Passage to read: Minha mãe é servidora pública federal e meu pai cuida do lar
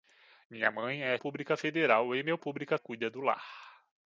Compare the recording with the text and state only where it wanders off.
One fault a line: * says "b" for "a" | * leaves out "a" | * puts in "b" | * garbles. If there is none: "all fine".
* leaves out "servidora"
* says "pública" for "pai"